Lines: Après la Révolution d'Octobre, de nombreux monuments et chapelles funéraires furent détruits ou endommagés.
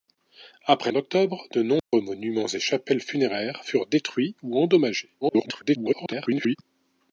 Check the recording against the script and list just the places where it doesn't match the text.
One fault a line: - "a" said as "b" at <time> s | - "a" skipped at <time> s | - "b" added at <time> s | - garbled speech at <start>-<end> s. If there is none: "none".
- "la Révolution" skipped at 0.9 s
- garbled speech at 5.2-6.6 s